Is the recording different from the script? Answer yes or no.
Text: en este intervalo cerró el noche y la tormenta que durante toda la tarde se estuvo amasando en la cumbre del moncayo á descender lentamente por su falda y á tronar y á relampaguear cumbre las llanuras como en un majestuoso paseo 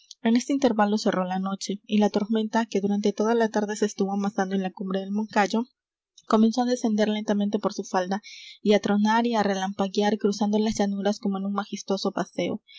yes